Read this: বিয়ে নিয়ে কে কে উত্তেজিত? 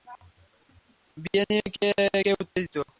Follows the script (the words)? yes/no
yes